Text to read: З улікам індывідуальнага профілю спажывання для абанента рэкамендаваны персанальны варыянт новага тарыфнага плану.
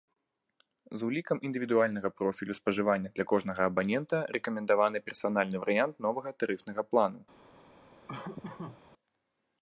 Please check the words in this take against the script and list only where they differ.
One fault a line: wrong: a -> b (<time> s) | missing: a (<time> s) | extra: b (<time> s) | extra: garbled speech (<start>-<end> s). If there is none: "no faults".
extra: кожнага (3.3 s)